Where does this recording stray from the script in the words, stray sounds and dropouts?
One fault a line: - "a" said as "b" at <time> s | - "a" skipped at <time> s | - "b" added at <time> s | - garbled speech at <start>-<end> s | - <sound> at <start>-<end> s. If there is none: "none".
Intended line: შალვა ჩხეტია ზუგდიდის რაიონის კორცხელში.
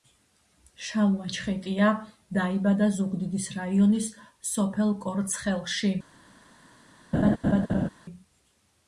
- "დაიბადა" added at 2.4 s
- "სოფელ" added at 4.5 s
- laugh at 7.1-7.9 s